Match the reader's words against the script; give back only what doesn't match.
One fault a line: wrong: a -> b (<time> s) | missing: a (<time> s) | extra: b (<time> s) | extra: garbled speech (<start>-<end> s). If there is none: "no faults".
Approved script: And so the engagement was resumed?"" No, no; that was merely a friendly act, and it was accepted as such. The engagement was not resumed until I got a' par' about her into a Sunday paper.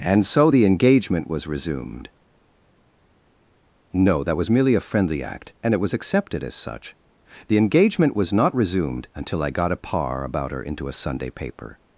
missing: no (4.2 s)